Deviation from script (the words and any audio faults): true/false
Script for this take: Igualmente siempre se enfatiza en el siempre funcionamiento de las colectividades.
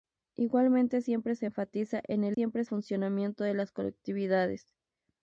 true